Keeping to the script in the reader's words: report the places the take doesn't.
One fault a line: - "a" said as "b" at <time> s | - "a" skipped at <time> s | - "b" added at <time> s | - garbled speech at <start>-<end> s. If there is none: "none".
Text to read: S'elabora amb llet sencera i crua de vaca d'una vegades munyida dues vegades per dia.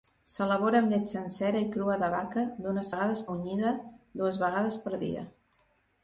none